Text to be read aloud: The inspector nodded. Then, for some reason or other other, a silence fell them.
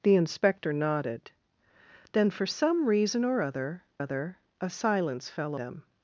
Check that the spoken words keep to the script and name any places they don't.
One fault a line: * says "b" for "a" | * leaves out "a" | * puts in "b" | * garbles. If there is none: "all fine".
all fine